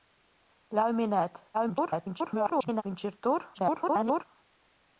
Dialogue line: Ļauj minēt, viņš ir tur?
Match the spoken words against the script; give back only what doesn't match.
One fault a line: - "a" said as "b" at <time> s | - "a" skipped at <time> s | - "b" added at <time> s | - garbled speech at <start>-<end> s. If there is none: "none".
- garbled speech at 1.5-2.8 s
- garbled speech at 3.5-4.3 s